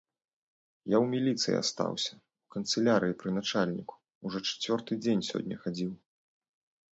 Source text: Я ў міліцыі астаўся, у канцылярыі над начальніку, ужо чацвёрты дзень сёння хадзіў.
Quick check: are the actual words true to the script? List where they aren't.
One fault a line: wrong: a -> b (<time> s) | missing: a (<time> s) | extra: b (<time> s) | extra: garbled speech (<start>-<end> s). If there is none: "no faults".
wrong: над -> пры (3.2 s)